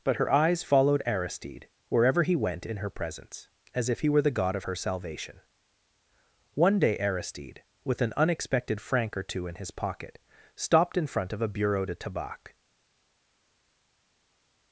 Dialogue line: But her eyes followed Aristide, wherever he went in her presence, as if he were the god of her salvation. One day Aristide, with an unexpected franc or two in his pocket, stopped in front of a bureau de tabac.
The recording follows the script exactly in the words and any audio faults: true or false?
true